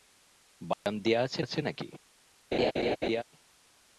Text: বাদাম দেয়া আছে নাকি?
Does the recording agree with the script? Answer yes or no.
no